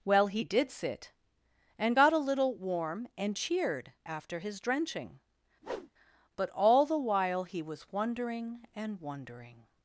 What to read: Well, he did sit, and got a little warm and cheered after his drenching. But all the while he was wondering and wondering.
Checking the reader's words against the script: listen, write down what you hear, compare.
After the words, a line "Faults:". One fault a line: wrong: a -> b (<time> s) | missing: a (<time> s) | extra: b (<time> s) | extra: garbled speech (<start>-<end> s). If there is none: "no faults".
Well, he did sit, and got a little warm and cheered after his drenching. But all the while he was wondering and wondering.
Faults:
no faults